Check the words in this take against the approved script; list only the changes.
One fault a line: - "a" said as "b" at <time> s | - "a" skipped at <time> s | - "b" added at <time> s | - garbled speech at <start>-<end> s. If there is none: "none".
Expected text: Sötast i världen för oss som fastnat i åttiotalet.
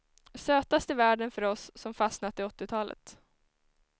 none